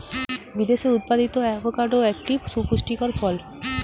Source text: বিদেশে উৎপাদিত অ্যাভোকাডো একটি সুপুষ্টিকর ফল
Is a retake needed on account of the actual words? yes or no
no